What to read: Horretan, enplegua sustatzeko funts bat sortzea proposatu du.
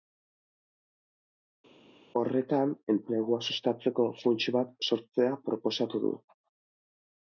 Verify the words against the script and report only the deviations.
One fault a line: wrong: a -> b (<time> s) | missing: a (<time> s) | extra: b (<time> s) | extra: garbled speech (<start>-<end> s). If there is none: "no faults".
no faults